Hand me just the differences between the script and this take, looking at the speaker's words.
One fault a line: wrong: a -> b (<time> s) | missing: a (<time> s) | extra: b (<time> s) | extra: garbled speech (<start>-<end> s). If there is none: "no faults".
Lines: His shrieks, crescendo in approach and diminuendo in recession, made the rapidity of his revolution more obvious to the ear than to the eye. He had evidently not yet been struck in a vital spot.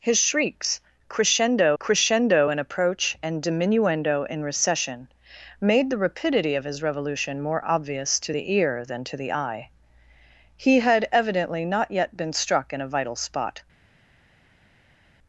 extra: crescendo (1.8 s)